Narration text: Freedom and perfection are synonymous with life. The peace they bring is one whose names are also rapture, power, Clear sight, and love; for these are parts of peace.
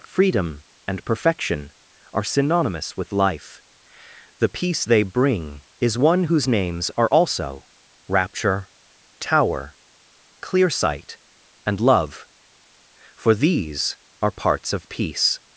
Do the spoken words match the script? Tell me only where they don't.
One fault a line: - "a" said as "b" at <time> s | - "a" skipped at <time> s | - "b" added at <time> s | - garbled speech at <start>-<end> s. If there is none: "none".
- "power" said as "tower" at 9.2 s